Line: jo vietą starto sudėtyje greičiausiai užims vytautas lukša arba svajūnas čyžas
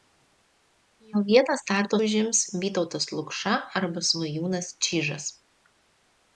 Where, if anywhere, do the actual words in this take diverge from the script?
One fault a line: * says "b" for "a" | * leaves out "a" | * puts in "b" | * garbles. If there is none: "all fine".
* leaves out "sudėtyje greičiausiai"